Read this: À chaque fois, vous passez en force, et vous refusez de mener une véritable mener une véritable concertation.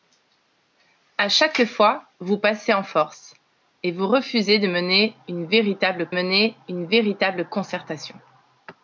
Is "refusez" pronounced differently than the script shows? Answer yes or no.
no